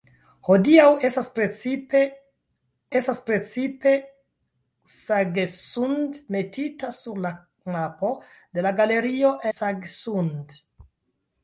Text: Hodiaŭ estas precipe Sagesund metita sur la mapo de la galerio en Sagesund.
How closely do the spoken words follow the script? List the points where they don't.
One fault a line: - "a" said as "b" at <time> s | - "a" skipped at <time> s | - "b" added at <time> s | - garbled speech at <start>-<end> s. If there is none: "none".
- "estas precipe" added at 3.0 s
- "en" skipped at 9.4 s